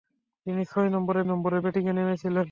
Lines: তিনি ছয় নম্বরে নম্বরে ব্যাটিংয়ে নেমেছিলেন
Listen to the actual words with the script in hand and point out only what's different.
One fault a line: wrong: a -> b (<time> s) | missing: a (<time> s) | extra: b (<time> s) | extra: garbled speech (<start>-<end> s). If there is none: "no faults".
no faults